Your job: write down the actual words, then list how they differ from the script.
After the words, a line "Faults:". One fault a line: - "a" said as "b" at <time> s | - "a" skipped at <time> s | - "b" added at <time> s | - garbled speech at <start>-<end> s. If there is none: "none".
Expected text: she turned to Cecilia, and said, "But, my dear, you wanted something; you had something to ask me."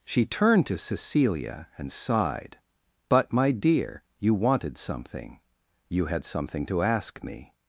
she turned to Cecilia, and sighed, "But, my dear, you wanted something; you had something to ask me."
Faults:
- "said" said as "sighed" at 1.9 s